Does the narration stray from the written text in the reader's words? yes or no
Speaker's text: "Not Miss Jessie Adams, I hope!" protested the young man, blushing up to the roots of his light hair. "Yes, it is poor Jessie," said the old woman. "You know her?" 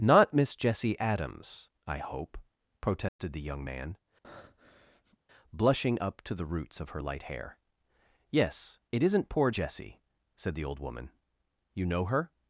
yes